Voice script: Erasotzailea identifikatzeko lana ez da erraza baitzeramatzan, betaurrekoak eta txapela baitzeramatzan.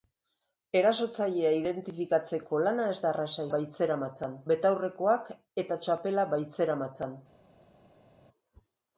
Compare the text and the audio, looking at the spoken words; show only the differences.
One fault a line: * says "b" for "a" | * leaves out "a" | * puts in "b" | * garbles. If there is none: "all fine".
all fine